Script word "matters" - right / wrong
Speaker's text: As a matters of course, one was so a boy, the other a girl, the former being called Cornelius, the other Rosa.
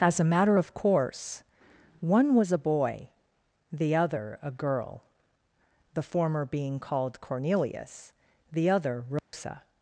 wrong